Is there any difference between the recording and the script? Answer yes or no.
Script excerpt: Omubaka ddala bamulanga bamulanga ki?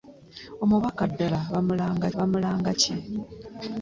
no